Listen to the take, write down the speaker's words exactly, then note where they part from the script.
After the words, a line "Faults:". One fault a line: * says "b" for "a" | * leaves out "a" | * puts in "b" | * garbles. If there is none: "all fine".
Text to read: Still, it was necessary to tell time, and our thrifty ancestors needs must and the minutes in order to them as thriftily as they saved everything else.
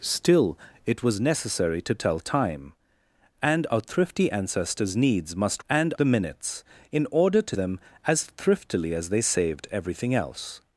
Still, it was necessary to tell time, and our thrifty ancestors needs must and the minutes in order to them as thriftily as they saved everything else.
Faults:
all fine